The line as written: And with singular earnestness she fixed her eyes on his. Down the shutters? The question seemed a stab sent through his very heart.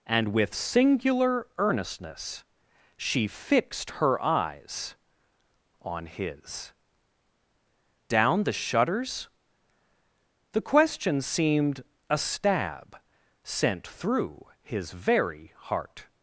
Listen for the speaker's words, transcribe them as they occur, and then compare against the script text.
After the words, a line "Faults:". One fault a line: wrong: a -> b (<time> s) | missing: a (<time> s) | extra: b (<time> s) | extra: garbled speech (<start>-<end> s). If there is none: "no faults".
And with singular earnestness she fixed her eyes on his. Down the shutters? The question seemed a stab sent through his very heart.
Faults:
no faults